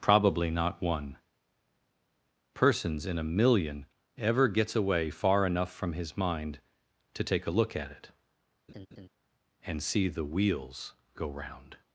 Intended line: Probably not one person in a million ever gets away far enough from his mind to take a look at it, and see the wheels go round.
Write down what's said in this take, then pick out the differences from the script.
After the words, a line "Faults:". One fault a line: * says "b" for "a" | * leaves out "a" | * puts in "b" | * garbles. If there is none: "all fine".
Probably not one persons in a million ever gets away far enough from his mind to take a look at it, and see the wheels go round.
Faults:
* says "persons" for "person"